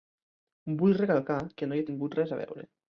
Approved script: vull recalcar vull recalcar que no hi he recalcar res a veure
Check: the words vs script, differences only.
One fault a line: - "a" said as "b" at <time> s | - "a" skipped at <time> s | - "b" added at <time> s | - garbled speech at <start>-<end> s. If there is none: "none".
- "vull recalcar" skipped at 1.4 s
- "recalcar" said as "tingut" at 1.9 s